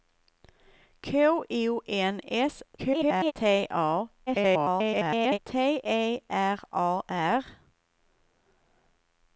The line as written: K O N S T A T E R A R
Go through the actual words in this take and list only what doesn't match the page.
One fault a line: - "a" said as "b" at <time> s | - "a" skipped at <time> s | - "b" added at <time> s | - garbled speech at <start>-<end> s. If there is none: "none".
- garbled speech at 2.8-3.3 s
- garbled speech at 4.3-5.4 s